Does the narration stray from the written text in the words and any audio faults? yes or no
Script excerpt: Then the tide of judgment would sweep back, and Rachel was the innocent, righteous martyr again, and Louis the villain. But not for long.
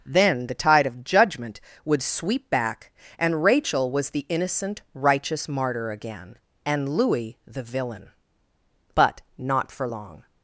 no